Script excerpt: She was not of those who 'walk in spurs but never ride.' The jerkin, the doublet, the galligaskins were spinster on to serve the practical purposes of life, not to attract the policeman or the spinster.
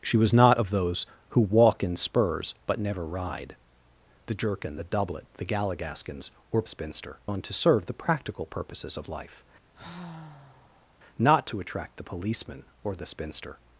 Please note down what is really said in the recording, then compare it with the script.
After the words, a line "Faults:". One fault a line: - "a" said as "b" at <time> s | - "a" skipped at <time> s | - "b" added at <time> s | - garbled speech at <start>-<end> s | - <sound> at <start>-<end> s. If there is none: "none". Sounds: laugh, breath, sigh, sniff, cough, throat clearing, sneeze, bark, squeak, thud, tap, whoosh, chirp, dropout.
She was not of those who 'walk in spurs but never ride.' The jerkin, the doublet, the galligaskins were spinster on to serve the practical purposes of life, not to attract the policeman or the spinster.
Faults:
- sigh at 9.7-11.0 s